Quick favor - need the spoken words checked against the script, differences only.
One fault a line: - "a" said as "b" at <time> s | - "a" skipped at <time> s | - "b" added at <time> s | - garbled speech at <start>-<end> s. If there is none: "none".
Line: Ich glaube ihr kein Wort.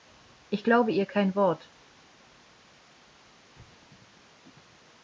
none